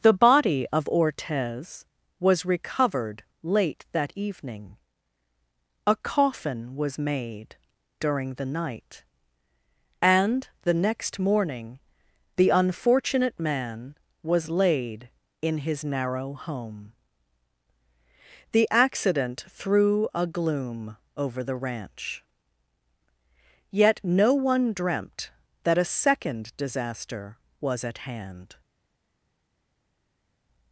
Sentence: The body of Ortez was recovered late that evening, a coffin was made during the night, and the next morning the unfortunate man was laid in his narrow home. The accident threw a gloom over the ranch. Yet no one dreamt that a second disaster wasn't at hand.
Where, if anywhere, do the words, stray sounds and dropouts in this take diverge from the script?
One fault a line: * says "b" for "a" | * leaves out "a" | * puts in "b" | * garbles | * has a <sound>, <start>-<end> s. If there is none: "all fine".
* says "was" for "wasn't"